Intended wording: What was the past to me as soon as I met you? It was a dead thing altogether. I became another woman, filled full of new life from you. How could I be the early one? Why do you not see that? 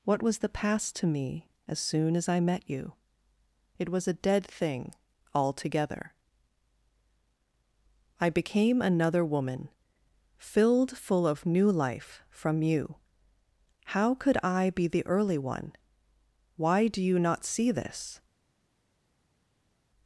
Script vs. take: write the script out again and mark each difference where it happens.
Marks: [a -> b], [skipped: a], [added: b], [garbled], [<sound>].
What was the past to me as soon as I met you? It was a dead thing altogether. I became another woman, filled full of new life from you. How could I be the early one? Why do you not see [that? -> this]